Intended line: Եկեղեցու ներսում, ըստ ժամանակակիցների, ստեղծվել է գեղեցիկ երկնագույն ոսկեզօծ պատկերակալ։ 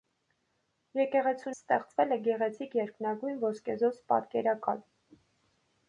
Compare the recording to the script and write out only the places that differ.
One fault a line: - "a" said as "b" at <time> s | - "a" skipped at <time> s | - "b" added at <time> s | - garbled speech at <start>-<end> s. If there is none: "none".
- "ներսում ըստ ժամանակակիցների" skipped at 1.5 s